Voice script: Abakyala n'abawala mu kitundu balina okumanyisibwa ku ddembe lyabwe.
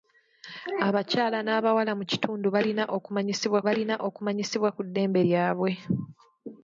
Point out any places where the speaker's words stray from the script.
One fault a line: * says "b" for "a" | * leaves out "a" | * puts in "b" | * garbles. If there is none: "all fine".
* puts in "balina okumanyisibwa"